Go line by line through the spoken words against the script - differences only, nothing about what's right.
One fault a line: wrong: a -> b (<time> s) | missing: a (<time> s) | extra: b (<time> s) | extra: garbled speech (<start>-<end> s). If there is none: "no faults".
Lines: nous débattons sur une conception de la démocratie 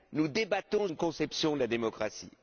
missing: sur (0.9 s)